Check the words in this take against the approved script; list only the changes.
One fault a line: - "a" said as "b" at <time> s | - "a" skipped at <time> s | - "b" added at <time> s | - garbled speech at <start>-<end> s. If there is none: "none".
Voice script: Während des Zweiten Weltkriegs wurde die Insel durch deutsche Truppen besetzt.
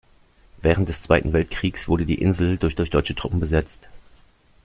- "durch" added at 2.7 s